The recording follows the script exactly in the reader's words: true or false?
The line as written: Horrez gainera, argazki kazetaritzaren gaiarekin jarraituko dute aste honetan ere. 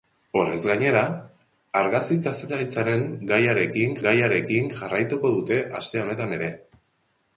false